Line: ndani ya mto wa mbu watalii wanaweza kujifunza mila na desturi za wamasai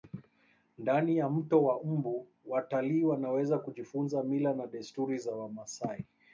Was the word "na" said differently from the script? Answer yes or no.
no